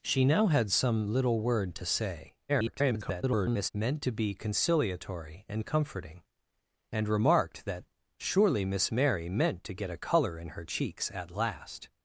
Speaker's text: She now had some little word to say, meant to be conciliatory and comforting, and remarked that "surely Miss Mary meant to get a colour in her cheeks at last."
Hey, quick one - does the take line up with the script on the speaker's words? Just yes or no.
no